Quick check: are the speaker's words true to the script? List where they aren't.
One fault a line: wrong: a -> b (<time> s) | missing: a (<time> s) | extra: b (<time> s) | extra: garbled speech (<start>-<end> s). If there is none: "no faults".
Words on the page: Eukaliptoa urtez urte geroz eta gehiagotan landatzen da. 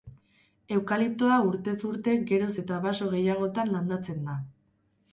extra: baso (2.9 s)